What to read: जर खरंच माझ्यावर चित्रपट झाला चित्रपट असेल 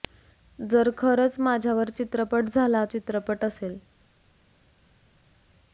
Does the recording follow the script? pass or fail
pass